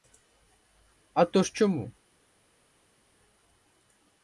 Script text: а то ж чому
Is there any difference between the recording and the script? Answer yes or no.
no